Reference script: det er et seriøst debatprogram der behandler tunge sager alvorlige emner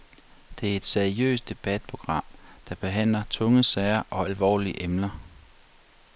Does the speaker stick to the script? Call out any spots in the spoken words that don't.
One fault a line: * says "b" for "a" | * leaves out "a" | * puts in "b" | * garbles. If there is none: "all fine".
* puts in "og"